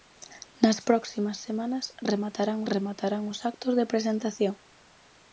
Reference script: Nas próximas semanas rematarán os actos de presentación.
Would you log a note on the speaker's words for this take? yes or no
yes